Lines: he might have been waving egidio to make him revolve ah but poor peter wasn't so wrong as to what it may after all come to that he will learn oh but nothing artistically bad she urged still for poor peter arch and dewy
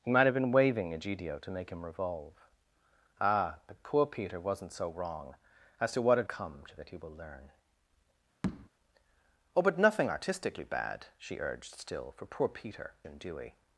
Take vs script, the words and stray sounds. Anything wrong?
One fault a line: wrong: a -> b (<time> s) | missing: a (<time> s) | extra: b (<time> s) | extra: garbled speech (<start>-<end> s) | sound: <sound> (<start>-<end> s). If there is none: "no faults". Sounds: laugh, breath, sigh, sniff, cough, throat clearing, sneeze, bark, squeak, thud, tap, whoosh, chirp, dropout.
missing: may after all (6.3 s)
sound: tap (8.4-8.7 s)
missing: arch (13.0 s)